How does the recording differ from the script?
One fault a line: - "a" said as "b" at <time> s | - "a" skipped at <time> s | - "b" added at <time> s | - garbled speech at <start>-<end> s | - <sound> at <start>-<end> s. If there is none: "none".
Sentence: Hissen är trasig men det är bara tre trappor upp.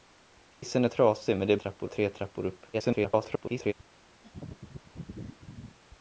- dropout at 0.5-0.6 s
- "bara" said as "trappor" at 1.5 s
- garbled speech at 2.7-3.7 s
- laugh at 4.2-5.8 s